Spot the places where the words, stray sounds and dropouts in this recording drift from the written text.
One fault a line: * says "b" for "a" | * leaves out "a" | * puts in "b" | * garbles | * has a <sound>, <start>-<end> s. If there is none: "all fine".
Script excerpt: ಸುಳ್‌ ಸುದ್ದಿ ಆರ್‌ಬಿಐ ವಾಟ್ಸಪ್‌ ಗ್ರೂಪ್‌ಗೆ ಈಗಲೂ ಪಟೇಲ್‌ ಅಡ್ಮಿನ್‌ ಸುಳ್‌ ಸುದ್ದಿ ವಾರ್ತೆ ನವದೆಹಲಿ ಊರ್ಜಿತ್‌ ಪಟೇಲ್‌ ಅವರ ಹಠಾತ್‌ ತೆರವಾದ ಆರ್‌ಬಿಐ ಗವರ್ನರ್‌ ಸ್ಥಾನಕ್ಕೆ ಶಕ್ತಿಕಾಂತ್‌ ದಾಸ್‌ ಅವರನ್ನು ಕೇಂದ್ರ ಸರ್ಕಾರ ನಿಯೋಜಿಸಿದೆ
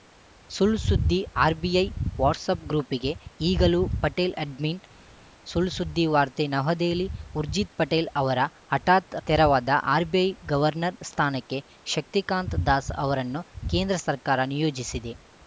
all fine